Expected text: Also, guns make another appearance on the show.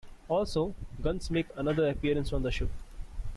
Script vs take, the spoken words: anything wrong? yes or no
no